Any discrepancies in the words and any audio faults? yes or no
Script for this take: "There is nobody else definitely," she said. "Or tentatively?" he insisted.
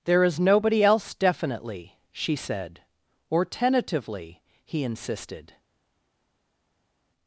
no